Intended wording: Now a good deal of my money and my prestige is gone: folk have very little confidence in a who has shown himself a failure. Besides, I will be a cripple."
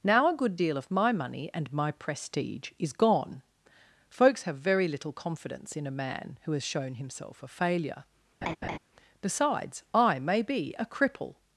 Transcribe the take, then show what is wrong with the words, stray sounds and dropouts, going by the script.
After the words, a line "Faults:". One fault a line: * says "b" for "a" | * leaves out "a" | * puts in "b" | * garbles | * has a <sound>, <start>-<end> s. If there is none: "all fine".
Now a good deal of my money and my prestige is gone: folks have very little confidence in a man who has shown himself a failure. Besides, I may be a cripple."
Faults:
* says "folks" for "folk"
* puts in "man"
* has a laugh, 8.4-8.8 s
* says "may" for "will"